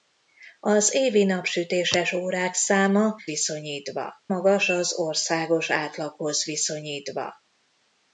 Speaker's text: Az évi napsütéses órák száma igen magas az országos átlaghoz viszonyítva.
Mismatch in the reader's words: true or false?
true